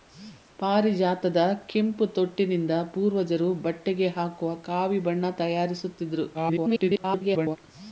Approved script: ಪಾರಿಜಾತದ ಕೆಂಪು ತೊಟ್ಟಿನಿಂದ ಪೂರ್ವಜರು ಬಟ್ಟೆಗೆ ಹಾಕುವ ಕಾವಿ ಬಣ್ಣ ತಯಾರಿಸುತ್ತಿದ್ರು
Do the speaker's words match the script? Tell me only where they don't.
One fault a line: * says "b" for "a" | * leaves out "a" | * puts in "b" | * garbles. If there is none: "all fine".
* garbles